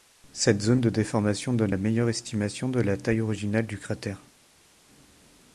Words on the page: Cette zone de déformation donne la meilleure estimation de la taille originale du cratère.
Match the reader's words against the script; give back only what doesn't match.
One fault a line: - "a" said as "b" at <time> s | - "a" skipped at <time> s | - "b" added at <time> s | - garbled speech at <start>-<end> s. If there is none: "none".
none